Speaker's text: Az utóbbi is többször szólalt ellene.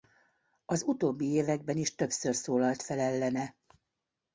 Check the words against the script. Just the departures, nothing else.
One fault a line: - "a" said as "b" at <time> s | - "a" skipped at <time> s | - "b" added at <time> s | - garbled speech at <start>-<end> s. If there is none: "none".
- "években" added at 1.2 s
- "fel" added at 2.8 s